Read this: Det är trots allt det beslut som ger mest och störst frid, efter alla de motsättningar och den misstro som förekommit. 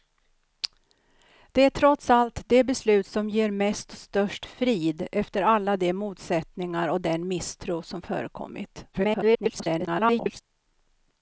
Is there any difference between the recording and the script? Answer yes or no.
yes